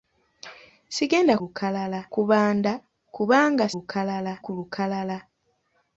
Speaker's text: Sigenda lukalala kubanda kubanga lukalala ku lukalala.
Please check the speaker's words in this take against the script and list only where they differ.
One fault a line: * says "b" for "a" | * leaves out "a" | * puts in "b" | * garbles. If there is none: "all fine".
all fine